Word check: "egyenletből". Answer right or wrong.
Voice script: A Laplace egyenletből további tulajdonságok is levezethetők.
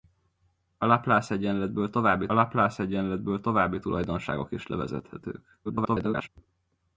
right